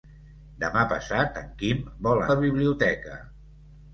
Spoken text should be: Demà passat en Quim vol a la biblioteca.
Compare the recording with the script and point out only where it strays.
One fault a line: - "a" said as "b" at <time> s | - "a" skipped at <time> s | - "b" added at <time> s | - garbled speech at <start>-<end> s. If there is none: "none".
none